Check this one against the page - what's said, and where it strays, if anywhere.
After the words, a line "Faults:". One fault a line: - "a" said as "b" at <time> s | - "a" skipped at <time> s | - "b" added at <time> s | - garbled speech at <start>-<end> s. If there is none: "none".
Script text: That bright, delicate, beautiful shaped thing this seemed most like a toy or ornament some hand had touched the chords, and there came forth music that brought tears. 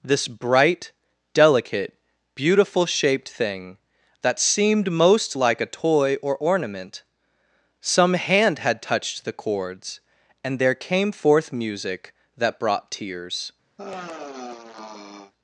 This bright, delicate, beautiful shaped thing that seemed most like a toy or ornament some hand had touched the chords, and there came forth music that brought tears.
Faults:
- "That" said as "This" at 0.0 s
- "this" said as "that" at 4.2 s